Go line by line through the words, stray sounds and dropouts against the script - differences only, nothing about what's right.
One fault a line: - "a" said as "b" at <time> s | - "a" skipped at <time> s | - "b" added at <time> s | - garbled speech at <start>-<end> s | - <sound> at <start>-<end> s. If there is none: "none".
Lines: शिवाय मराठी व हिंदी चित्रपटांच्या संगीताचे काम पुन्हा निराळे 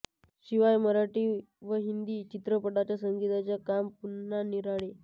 none